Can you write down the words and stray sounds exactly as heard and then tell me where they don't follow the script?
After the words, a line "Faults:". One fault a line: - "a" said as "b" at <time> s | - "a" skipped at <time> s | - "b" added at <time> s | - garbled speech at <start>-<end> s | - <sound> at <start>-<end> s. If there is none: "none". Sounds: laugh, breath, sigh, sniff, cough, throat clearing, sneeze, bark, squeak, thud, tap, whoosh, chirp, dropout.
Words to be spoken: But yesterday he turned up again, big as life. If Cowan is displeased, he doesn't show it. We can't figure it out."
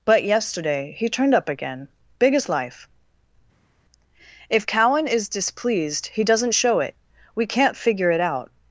But yesterday he turned up again, big as life. If Cowan is displeased, he doesn't show it. We can't figure it out."
Faults:
none